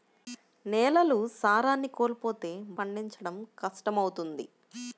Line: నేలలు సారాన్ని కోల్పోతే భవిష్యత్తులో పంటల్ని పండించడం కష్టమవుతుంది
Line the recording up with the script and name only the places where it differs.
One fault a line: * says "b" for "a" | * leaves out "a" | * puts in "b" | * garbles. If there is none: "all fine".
* leaves out "భవిష్యత్తులో పంటల్ని"